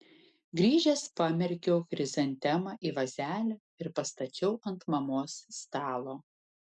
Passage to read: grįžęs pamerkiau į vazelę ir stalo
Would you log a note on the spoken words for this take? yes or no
yes